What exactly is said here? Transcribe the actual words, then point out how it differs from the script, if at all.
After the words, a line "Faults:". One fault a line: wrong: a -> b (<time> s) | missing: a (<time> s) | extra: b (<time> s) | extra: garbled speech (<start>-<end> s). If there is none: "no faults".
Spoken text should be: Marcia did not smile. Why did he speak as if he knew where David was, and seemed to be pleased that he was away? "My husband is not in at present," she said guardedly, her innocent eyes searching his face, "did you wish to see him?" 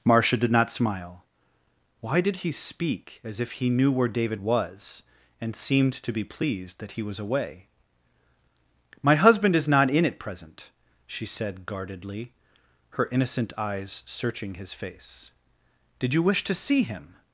Marcia did not smile. Why did he speak as if he knew where David was, and seemed to be pleased that he was away? "My husband is not in at present," she said guardedly, her innocent eyes searching his face, "did you wish to see him?"
Faults:
no faults